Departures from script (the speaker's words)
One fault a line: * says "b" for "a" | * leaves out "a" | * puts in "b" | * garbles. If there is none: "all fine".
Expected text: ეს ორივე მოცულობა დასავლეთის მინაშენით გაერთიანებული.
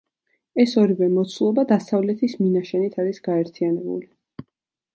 * puts in "არის"